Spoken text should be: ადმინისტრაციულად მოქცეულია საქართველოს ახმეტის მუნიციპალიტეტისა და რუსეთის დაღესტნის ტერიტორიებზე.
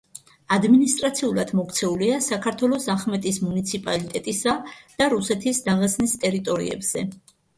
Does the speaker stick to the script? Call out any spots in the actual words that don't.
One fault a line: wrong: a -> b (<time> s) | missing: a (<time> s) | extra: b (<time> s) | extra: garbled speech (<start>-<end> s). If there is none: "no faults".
no faults